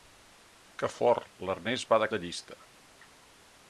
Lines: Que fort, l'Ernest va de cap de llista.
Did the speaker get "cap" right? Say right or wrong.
wrong